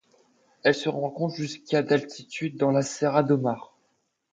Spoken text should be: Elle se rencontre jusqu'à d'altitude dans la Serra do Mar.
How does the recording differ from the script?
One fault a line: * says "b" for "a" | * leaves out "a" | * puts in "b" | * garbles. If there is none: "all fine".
all fine